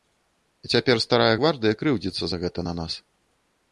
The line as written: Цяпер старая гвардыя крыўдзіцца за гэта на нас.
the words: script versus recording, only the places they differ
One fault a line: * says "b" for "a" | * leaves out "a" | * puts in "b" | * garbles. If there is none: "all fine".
all fine